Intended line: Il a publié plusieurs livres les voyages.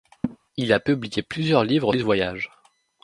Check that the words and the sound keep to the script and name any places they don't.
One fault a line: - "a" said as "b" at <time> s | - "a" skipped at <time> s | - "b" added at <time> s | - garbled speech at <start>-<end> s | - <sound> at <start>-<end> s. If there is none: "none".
- laugh at 0.2-0.4 s